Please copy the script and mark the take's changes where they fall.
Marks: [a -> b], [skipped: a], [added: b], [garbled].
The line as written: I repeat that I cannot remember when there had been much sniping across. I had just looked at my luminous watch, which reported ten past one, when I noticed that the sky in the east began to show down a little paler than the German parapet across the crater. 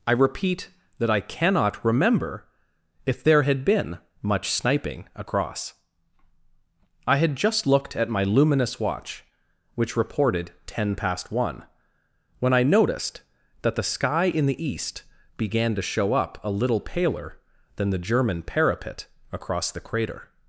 I repeat that I cannot remember [when -> if] there had been much sniping across. I had just looked at my luminous watch, which reported ten past one, when I noticed that the sky in the east began to show [down -> up] a little paler than the German parapet across the crater.